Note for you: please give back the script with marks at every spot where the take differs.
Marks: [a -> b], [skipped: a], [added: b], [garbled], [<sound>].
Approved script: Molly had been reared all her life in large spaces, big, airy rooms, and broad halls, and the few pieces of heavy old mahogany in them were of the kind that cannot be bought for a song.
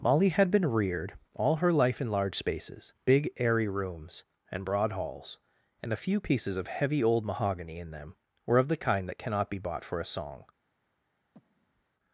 Molly had been reared all her life in large spaces, big, airy rooms, and broad halls, and [the -> a] few pieces of heavy old mahogany in them were of the kind that cannot be bought for a song. [breath]